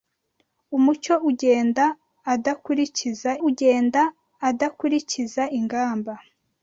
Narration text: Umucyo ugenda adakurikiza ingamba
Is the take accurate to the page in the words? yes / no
no